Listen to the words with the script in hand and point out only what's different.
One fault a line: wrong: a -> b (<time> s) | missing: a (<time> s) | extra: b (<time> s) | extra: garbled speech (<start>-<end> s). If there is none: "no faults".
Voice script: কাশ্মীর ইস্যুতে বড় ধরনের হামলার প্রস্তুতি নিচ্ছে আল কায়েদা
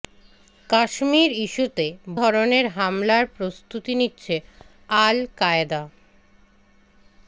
missing: বড় (1.9 s)